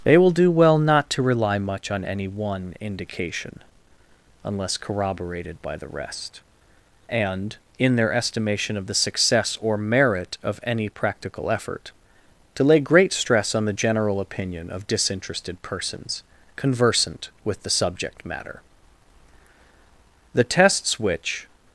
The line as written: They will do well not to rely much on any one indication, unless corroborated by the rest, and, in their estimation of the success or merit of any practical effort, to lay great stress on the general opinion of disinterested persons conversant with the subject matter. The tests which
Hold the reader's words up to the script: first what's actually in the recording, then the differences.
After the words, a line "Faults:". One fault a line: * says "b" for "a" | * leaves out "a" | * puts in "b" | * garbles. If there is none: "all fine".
They will do well not to rely much on any one indication, unless corroborated by the rest, and, in their estimation of the success or merit of any practical effort, to lay great stress on the general opinion of disinterested persons conversant with the subject matter. The tests which
Faults:
all fine